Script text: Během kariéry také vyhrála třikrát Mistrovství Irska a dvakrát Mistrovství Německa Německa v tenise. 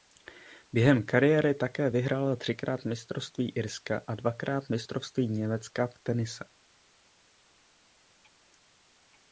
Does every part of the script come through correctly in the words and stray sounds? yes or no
no